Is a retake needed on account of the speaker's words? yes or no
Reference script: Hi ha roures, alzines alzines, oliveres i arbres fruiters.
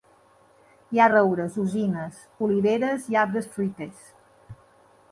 yes